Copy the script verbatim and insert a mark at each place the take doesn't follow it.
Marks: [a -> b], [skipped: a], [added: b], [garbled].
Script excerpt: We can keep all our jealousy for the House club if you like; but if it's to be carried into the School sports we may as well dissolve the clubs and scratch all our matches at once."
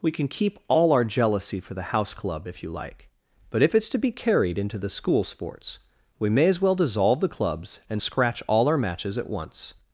We can keep all our jealousy for the House club if you like; but if it's to be carried into the School sports we may as well dissolve the clubs and scratch all our matches at once."